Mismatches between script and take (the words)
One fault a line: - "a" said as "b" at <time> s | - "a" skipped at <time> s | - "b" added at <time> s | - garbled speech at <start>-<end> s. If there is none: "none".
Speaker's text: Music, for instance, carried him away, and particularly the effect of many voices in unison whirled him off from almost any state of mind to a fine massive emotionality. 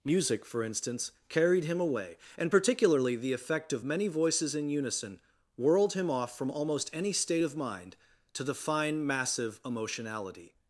- "a" said as "the" at 8.4 s